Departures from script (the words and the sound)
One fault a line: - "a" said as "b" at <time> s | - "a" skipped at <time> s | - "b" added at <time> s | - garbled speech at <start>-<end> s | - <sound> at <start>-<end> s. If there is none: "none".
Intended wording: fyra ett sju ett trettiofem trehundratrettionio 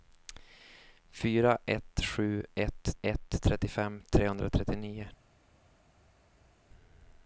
- "ett" added at 3.0 s